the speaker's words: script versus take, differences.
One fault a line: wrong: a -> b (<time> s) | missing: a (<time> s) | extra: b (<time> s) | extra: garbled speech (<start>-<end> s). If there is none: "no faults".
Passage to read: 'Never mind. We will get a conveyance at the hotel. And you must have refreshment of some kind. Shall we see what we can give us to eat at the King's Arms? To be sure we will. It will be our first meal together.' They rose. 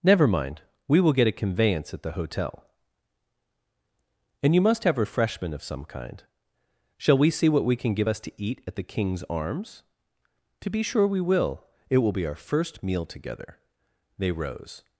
no faults